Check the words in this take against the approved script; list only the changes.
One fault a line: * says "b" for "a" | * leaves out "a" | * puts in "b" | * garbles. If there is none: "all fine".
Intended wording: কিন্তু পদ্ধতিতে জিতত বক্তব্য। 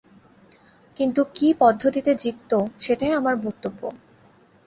* puts in "কী"
* puts in "সেটাই আমার"